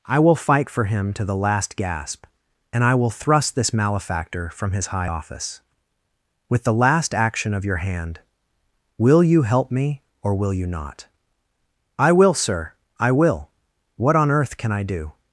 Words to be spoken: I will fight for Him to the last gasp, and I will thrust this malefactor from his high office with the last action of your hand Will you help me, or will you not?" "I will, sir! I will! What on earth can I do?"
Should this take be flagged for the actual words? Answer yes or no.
no